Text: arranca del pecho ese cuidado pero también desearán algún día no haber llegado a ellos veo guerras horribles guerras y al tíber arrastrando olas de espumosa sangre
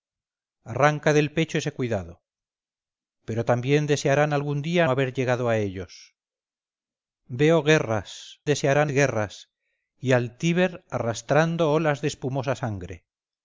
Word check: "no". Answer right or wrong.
wrong